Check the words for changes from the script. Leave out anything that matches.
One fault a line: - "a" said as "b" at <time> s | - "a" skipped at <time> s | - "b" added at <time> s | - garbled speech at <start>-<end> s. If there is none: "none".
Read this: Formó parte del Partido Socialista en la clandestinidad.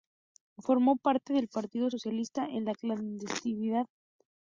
none